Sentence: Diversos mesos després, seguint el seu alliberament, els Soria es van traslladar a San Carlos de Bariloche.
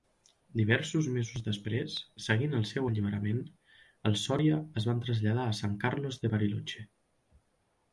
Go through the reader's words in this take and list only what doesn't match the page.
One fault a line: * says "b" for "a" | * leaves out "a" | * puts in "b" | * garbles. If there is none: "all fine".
all fine